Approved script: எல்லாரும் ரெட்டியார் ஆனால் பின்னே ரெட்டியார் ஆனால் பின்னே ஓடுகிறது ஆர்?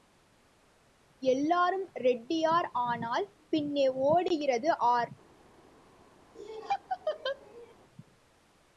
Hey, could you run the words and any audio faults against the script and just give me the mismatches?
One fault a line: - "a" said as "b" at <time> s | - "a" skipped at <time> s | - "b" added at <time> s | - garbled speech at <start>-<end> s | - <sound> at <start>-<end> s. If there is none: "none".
- "ரெட்டியார் ஆனால் பின்னே" skipped at 3.9 s
- laugh at 6.3-7.7 s